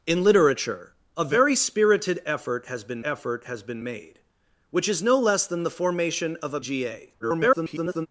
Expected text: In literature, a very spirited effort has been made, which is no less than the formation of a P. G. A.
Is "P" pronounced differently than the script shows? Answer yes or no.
yes